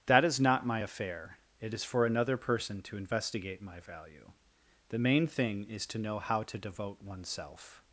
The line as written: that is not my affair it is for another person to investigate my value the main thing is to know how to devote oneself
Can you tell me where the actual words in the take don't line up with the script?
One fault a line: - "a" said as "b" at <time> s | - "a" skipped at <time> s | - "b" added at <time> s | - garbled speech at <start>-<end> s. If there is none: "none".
none